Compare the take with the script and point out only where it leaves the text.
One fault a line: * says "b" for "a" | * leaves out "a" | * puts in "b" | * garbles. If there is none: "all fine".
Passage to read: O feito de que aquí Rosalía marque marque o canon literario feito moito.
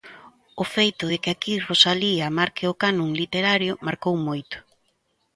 * leaves out "marque"
* says "marcou" for "feito"